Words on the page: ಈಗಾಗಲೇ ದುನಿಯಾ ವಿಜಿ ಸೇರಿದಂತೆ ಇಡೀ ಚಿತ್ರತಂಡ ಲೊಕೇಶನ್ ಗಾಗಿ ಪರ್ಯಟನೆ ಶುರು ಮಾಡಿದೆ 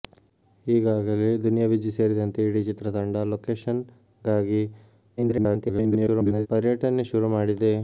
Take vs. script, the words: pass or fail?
fail